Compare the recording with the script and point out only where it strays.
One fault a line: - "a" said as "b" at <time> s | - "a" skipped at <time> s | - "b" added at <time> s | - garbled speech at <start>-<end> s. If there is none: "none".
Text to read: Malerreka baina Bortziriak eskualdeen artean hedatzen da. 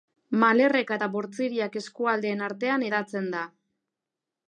- "baina" said as "eta" at 1.0 s